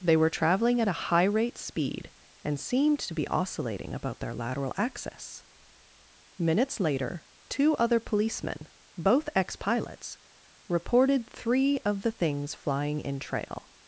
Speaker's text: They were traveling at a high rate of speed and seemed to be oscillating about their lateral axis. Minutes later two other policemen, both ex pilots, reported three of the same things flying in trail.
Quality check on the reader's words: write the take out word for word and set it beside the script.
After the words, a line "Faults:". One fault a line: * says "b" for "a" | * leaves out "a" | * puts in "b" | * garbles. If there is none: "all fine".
They were traveling at a high rate speed and seemed to be oscillating about their lateral axis. Minutes later two other policemen, both ex pilots, reported three of the things flying in trail.
Faults:
* leaves out "of"
* leaves out "same"